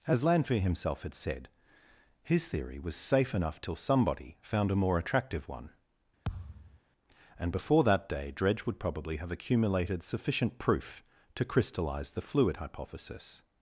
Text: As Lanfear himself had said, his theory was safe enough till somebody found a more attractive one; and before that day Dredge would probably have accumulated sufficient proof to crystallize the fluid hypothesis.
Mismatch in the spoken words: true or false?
false